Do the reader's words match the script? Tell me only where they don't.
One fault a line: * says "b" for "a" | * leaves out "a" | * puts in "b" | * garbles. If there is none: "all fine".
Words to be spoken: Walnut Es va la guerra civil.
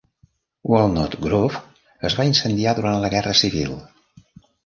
* puts in "Grove"
* puts in "incendiar durant"